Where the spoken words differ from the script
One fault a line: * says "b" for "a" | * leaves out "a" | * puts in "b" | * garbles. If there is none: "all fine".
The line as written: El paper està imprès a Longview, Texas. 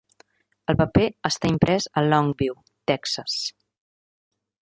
all fine